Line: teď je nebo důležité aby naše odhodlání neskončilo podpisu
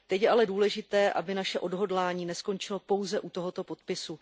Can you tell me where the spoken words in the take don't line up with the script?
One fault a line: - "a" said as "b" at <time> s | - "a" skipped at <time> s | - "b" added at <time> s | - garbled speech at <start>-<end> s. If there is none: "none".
- "nebo" said as "ale" at 0.3 s
- "pouze u tohoto" added at 2.8 s